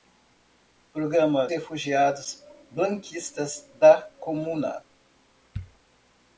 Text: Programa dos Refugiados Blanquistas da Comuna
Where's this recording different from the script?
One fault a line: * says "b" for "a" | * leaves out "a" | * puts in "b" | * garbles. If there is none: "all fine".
* leaves out "dos"